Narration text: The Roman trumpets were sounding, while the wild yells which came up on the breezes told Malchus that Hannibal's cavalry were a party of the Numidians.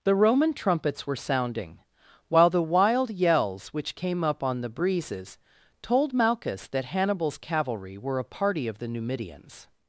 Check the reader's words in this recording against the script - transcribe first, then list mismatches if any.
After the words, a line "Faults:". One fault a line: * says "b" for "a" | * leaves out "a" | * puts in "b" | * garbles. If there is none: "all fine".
The Roman trumpets were sounding, while the wild yells which came up on the breezes told Malchus that Hannibal's cavalry were a party of the Numidians.
Faults:
all fine